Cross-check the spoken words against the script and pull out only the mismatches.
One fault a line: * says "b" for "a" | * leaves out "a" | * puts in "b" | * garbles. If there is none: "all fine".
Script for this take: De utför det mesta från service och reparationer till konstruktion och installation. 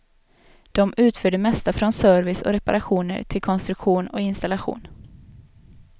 all fine